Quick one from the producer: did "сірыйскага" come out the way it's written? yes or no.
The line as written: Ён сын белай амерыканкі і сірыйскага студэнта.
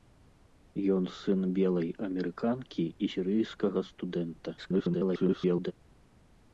yes